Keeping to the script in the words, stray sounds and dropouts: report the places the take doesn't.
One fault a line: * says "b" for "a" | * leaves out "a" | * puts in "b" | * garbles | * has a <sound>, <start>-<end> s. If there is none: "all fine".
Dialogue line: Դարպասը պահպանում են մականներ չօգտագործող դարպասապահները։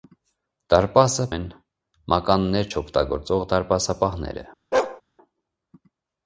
* leaves out "պահպանում"
* has a bark, 4.7-5.0 s